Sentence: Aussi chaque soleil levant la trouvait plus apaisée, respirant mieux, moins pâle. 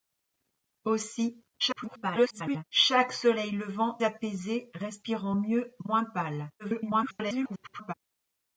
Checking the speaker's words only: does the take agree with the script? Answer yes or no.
no